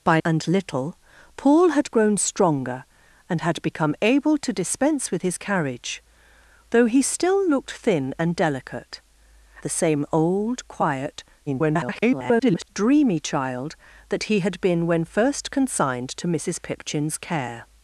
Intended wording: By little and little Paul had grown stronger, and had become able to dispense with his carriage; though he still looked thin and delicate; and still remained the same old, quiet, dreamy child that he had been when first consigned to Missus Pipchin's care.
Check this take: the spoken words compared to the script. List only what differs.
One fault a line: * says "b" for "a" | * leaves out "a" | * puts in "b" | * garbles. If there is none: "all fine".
* leaves out "little"
* leaves out "and still remained"
* garbles